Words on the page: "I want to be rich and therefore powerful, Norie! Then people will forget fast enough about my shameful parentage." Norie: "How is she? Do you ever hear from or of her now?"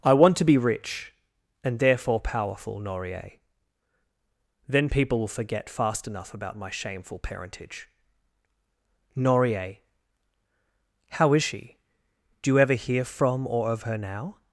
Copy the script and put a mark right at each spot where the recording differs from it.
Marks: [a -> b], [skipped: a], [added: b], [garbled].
"I want to be rich and therefore powerful, Norie! Then people will forget fast enough about my shameful parentage." Norie: "How is she? Do you ever hear from or of her now?"